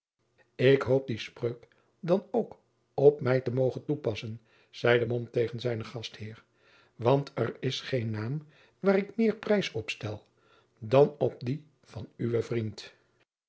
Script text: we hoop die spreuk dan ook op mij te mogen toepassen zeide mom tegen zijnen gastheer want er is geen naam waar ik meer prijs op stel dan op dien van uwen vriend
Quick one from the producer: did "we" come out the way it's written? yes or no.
no